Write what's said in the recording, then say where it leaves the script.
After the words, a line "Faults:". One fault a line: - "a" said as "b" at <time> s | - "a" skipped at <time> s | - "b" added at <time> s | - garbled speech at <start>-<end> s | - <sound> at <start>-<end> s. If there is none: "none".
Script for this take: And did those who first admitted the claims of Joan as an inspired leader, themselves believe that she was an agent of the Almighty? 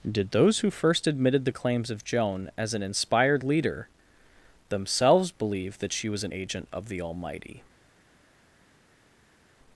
did those who first admitted the claims of Joan as an inspired leader, themselves believe that she was an agent of the Almighty?
Faults:
- "And" skipped at 0.1 s